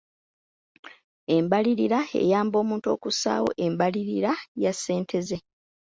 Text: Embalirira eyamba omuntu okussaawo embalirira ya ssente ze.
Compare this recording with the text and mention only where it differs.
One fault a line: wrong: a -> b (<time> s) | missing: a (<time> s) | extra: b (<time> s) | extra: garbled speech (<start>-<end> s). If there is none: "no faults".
no faults